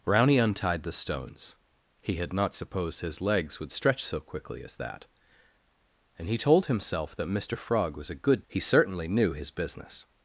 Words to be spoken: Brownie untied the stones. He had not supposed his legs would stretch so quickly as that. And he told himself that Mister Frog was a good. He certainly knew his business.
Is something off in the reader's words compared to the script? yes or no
no